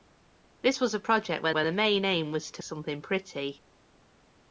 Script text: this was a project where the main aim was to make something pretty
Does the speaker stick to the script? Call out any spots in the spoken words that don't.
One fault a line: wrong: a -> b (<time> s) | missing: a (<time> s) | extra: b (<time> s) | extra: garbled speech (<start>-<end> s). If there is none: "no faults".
extra: where (1.5 s)
missing: make (2.6 s)